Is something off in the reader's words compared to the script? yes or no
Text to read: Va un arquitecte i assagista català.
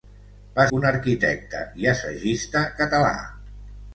no